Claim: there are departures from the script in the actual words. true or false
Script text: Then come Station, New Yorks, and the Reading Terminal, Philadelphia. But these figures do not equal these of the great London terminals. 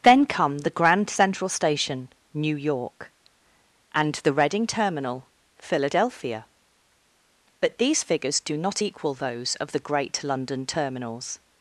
true